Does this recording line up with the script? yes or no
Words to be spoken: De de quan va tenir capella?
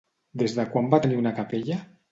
no